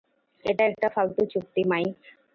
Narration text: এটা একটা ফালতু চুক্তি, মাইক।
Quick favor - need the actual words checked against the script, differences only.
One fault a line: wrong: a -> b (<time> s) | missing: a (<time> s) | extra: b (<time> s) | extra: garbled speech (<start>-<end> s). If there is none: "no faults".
no faults